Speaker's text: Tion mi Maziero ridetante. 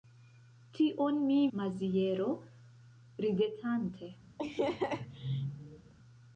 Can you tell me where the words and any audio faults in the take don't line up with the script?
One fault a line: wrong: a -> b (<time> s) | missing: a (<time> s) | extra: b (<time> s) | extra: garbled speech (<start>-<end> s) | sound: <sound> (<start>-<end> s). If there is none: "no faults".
sound: laugh (4.4-5.9 s)